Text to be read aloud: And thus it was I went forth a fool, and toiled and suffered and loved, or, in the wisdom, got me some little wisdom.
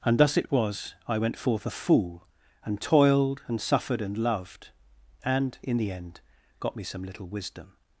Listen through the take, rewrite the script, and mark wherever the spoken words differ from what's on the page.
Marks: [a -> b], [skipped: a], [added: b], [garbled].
And thus it was I went forth a fool, and toiled and suffered and loved, [or, -> and] in the [wisdom, -> end] got me some little wisdom.